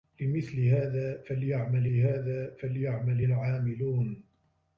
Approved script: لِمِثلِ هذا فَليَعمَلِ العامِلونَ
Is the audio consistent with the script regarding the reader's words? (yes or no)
no